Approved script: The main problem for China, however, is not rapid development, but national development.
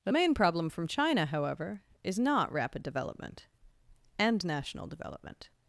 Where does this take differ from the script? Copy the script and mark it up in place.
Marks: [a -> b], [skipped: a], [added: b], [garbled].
The main problem [for -> from] China, however, is not rapid development, [but -> and] national development.